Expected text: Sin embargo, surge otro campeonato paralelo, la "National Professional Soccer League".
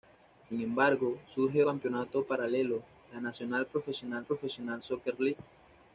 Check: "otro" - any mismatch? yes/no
yes